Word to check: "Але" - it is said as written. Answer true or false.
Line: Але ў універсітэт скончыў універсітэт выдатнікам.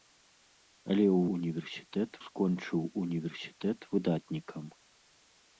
true